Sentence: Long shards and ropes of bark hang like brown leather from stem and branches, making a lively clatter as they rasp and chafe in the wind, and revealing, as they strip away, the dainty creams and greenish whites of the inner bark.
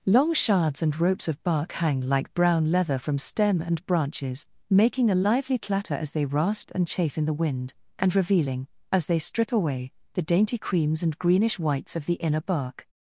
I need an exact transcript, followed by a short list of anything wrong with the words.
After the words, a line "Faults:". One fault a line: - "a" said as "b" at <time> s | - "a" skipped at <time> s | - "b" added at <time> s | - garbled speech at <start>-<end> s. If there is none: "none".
Long shards and ropes of bark hang like brown leather from stem and branches, making a lively clatter as they rasp and chafe in the wind, and revealing, as they strip away, the dainty creams and greenish whites of the inner bark.
Faults:
none